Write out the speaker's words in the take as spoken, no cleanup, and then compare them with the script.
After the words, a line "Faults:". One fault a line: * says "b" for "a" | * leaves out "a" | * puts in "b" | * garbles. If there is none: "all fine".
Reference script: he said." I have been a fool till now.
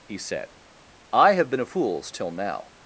he said." I have been a fools till now.
Faults:
* says "fools" for "fool"